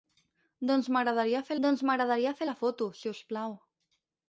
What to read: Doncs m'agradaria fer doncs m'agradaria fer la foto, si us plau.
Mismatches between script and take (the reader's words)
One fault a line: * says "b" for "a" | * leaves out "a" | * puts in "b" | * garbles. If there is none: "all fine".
all fine